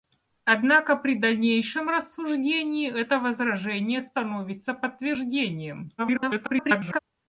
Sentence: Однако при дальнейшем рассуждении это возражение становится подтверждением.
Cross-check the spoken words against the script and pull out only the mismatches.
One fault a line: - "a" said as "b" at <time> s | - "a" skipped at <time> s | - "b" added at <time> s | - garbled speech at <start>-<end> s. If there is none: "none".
- garbled speech at 6.0-7.0 s